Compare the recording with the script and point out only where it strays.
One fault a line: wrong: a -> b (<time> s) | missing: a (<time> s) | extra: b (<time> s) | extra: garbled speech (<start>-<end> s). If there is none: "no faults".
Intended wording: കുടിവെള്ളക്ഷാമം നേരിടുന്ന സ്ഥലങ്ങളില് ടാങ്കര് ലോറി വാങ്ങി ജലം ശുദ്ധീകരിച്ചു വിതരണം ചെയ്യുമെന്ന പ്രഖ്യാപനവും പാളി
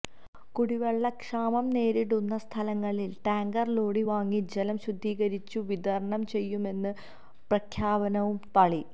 no faults